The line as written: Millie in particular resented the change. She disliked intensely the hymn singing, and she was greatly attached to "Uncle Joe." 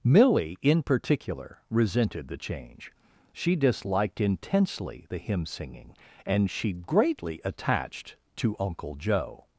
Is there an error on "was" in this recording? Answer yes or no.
yes